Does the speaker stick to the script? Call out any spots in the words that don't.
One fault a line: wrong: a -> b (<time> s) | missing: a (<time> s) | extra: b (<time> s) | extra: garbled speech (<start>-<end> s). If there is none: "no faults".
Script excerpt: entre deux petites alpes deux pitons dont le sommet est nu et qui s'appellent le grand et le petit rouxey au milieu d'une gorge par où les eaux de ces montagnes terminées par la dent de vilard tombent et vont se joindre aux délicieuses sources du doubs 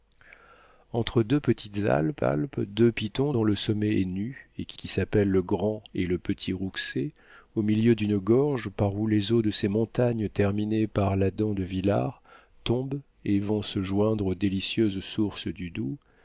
extra: alpes (2.2 s)
extra: qui (4.7 s)